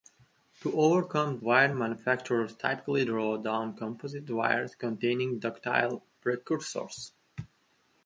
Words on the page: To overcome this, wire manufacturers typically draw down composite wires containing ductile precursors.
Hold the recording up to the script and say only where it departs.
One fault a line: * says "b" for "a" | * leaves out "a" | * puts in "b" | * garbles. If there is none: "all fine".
* leaves out "this"